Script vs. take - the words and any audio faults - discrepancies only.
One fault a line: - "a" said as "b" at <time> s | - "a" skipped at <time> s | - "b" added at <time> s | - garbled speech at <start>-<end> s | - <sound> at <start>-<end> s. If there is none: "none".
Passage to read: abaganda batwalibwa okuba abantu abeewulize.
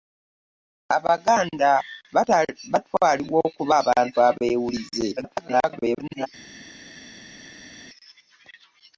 - garbled speech at 5.2-6.3 s